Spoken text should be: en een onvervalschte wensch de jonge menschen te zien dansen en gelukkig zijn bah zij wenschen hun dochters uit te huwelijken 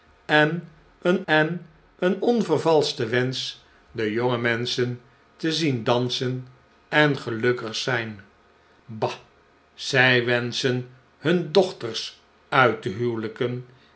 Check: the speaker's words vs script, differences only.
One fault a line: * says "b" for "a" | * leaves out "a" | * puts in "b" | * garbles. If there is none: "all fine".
* puts in "en een"